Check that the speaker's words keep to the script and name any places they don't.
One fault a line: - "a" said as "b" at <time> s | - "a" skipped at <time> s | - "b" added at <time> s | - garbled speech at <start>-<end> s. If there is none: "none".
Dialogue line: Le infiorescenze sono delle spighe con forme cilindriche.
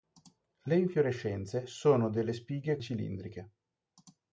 - "con forme" skipped at 2.8 s